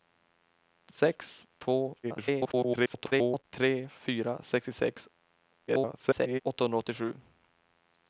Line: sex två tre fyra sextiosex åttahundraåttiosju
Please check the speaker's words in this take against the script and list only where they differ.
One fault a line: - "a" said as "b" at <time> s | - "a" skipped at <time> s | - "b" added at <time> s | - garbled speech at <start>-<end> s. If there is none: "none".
- garbled speech at 2.0-3.4 s
- garbled speech at 5.7-6.4 s